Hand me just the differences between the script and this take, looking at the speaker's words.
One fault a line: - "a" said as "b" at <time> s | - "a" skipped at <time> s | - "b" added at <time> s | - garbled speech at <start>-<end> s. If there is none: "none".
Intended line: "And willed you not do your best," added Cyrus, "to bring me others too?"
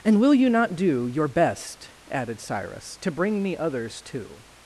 - "willed" said as "will" at 0.2 s